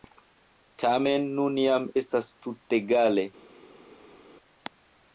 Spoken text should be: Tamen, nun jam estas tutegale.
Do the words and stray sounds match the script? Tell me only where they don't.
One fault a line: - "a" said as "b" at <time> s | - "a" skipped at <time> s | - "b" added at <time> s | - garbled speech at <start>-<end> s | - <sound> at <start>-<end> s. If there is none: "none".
none